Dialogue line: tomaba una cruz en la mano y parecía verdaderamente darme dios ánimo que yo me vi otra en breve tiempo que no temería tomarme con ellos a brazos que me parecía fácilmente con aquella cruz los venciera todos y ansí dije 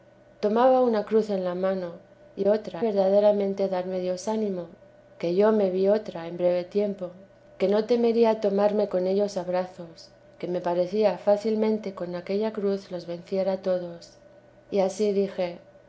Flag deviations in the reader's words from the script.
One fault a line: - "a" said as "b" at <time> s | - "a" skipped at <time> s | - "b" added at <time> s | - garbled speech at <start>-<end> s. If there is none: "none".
- "parecía" said as "otra" at 2.5 s